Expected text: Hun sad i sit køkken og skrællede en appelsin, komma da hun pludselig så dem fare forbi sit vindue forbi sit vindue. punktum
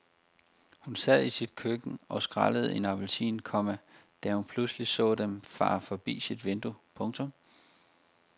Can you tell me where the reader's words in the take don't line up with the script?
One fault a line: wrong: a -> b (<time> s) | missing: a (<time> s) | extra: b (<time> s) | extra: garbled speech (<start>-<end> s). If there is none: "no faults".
missing: forbi sit vindue (6.8 s)